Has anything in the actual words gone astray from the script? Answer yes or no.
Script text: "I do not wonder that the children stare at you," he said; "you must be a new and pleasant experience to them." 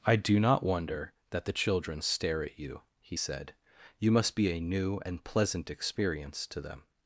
no